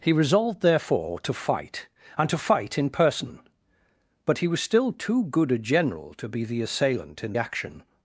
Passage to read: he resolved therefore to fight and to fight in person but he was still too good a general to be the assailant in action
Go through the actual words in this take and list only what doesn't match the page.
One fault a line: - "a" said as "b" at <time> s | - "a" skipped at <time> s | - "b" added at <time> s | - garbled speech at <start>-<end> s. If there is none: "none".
none